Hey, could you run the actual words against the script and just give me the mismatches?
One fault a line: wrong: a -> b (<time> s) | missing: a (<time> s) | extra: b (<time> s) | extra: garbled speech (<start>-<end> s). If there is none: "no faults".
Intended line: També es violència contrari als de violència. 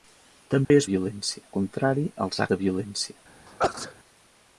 no faults